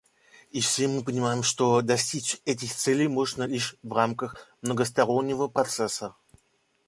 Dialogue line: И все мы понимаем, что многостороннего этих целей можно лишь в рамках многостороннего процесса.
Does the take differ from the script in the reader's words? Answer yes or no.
yes